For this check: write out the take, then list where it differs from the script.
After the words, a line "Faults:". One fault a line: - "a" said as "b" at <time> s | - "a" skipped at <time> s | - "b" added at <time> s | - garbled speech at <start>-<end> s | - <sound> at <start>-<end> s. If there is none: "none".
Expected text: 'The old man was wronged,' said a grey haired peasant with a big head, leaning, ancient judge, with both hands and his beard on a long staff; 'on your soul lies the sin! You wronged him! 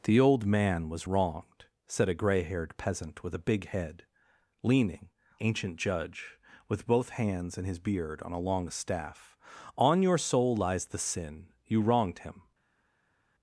'The old man was wronged,' said a grey haired peasant with a big head, leaning, ancient judge, with both hands and his beard on a long staff; 'on your soul lies the sin! You wronged him!
Faults:
none